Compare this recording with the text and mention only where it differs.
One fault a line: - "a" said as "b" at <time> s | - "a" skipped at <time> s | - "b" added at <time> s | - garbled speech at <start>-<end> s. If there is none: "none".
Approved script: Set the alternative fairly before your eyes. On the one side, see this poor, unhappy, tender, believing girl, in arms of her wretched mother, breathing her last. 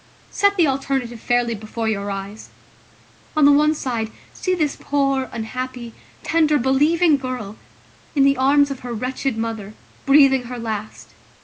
- "the" added at 8.2 s